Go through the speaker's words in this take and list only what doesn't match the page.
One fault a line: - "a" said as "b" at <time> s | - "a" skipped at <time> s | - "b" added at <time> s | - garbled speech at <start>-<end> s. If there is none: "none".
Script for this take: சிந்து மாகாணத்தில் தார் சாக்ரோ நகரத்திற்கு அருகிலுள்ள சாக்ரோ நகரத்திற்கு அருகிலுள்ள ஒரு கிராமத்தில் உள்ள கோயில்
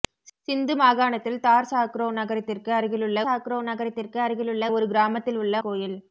none